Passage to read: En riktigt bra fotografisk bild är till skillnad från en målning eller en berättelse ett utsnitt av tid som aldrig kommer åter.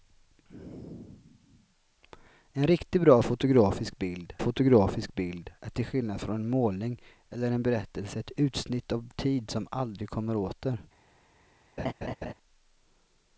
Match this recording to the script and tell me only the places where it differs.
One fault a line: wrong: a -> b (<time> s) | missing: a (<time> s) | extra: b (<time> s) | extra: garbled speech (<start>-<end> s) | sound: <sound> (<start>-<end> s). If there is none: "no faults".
extra: fotografisk bild (4.4 s)
sound: laugh (11.8-12.3 s)